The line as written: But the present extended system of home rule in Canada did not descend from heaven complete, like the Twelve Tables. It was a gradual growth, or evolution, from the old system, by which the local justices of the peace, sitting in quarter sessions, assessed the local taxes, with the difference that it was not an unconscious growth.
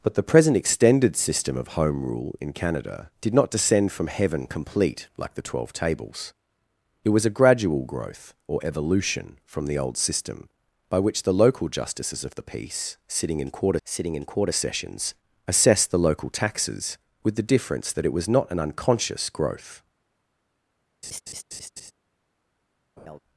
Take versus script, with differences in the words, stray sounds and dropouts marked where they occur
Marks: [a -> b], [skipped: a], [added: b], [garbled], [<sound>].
But the present extended system of home rule in Canada did not descend from heaven complete, like the Twelve Tables. It was a gradual growth, or evolution, from the old system, by which the local justices of the peace, sitting in quarter [added: sitting in quarter] sessions, assessed the local taxes, with the difference that it was not an unconscious growth. [laugh] [laugh]